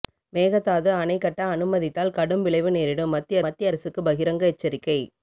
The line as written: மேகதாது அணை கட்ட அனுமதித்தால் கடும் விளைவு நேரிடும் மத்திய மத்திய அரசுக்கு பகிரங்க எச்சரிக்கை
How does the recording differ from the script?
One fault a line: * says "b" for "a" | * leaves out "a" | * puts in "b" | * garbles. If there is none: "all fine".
all fine